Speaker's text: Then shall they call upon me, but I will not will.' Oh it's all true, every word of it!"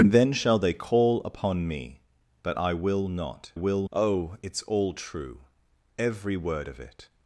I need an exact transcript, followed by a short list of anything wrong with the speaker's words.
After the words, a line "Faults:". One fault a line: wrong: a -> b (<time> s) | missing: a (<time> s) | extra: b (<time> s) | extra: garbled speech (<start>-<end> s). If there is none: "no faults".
Then shall they call upon me, but I will not will.' Oh it's all true, every word of it!"
Faults:
no faults